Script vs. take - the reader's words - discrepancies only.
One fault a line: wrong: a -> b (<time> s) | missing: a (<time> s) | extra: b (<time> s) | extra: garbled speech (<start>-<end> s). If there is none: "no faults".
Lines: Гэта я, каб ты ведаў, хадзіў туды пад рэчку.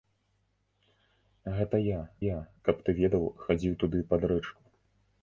extra: я (2.2 s)